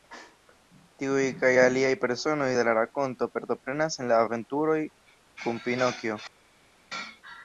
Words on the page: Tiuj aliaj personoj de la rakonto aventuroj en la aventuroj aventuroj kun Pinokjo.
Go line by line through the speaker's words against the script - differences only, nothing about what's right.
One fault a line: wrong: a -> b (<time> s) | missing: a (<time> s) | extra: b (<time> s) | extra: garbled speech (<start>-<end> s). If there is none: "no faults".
extra: kaj (1.4 s)
wrong: aventuroj -> partoprenas (3.4 s)
missing: aventuroj (4.8 s)